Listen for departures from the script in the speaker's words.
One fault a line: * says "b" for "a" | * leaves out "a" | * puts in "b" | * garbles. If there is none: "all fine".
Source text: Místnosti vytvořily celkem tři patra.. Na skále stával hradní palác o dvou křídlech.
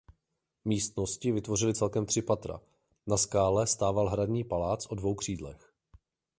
all fine